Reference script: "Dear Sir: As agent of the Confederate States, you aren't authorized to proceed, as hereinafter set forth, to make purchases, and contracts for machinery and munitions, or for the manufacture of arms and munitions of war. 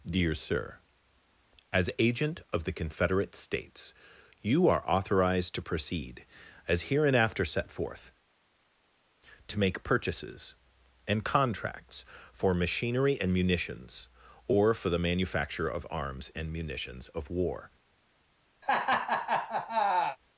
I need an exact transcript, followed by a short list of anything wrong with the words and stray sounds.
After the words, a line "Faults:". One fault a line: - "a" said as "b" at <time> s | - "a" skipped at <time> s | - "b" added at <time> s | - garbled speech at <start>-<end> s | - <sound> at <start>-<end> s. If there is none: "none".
"Dear Sir: As agent of the Confederate States, you are authorized to proceed, as hereinafter set forth, to make purchases, and contracts for machinery and munitions, or for the manufacture of arms and munitions of war.
Faults:
- "aren't" said as "are" at 4.7 s
- laugh at 18.6-20.2 s